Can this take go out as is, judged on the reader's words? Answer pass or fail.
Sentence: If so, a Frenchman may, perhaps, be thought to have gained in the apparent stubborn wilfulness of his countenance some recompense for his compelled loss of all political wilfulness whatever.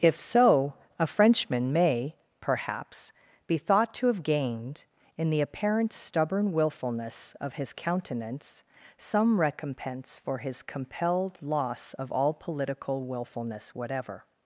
pass